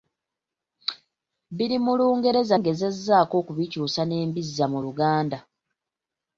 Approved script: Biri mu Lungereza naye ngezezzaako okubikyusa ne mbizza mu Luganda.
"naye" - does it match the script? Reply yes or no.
no